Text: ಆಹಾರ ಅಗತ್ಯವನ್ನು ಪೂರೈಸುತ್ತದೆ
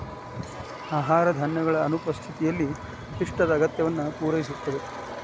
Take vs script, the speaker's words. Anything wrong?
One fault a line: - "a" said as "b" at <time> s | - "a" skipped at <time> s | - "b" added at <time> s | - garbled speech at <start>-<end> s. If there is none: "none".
- "ಧಾನ್ಯಗಳ ಅನುಪಸ್ಥಿತಿಯಲ್ಲಿ ಪಿಷ್ಟದ" added at 1.4 s